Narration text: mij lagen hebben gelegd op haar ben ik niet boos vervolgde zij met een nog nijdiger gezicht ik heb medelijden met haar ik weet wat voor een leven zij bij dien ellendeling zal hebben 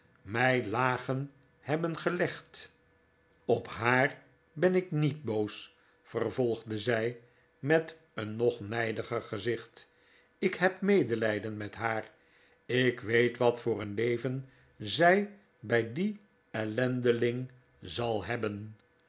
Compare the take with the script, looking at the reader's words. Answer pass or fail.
pass